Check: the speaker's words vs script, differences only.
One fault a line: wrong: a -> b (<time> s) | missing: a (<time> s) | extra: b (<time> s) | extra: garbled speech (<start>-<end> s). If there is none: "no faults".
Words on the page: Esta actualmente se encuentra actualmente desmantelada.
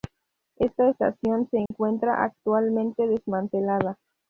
wrong: actualmente -> estación (0.9 s)